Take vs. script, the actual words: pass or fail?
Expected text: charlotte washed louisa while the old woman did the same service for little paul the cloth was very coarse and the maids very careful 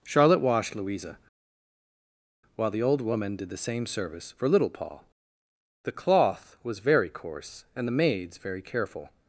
pass